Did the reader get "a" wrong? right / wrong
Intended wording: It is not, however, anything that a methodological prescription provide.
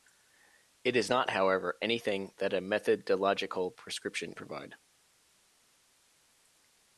right